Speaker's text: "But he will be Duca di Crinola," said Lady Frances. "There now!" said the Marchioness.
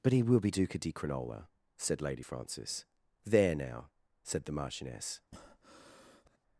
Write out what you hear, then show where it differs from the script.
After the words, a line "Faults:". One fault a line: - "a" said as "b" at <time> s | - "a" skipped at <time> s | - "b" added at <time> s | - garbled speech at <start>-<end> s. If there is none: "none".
"But he will be Duca di Crinola," said Lady Frances. "There now!" said the Marchioness.
Faults:
none